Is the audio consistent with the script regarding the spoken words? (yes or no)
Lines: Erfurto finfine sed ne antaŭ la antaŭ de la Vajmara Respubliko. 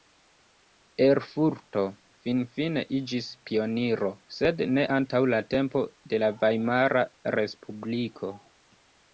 no